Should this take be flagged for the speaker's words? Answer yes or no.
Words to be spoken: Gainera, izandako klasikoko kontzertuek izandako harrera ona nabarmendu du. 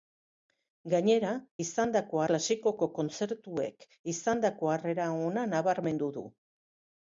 no